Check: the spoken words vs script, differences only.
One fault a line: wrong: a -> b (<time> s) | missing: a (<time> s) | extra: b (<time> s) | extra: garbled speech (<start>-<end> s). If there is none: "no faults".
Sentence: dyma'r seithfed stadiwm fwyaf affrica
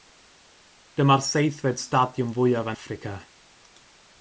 no faults